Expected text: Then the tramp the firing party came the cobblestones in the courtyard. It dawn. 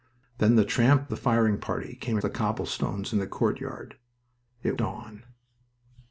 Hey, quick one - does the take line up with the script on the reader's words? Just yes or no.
yes